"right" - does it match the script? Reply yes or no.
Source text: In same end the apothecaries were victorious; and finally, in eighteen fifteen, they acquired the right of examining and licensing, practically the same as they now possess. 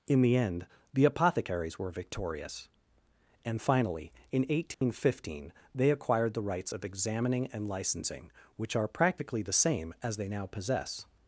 no